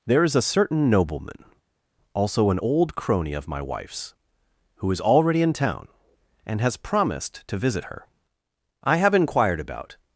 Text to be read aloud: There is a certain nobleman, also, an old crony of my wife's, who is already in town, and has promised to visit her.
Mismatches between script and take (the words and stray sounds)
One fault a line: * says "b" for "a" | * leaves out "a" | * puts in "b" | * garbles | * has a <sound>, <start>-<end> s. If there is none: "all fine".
* puts in "I have inquired about"